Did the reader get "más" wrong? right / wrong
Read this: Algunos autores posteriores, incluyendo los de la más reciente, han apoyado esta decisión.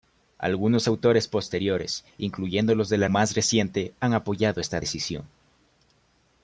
right